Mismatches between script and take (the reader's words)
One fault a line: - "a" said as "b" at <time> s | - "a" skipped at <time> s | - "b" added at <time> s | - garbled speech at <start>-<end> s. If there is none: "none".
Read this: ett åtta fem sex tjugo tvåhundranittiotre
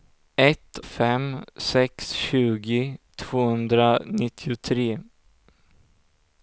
- "åtta" skipped at 0.8 s